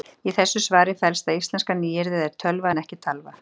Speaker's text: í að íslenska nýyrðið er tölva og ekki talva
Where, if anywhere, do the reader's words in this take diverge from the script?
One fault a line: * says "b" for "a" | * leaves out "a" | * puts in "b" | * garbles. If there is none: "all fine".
* puts in "þessu svari felst"
* says "en" for "og"